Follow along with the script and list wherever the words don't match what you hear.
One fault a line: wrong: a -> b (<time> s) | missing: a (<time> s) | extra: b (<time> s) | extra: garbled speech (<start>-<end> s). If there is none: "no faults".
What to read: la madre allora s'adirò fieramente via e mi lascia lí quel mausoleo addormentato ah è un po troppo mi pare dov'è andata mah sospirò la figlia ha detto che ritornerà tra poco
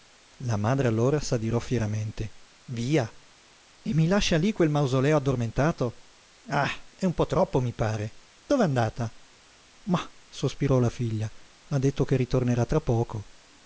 no faults